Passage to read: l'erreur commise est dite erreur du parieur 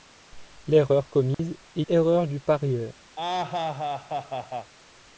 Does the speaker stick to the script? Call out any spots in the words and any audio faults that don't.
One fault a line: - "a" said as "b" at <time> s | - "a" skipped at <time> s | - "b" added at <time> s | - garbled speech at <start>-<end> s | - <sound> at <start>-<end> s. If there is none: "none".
- dropout at 1.3-1.4 s
- "dite" skipped at 1.8 s
- laugh at 3.2-4.7 s